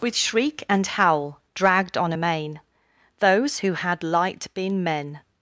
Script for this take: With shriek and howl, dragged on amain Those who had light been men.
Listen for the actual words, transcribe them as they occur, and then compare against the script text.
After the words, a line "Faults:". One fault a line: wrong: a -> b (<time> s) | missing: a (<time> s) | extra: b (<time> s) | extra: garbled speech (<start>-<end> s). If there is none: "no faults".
With shriek and howl, dragged on amain Those who had light been men.
Faults:
no faults